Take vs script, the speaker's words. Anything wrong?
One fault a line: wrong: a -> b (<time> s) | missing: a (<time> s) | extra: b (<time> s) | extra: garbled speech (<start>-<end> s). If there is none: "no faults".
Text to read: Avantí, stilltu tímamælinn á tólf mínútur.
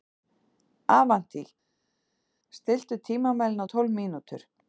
no faults